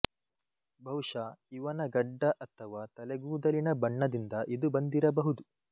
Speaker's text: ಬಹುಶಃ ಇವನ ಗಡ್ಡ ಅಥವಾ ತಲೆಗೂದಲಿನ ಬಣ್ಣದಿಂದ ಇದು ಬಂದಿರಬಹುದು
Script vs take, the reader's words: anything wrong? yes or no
no